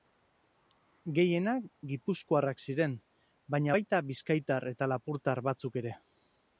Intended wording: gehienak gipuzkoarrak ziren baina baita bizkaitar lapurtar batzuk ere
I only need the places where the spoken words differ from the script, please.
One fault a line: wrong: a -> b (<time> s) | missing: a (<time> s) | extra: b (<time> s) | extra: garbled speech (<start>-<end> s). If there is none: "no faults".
extra: eta (4.7 s)